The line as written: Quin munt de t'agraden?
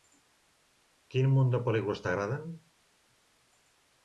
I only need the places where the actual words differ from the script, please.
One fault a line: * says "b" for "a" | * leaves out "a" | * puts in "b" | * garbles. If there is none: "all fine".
* puts in "pel·lícules"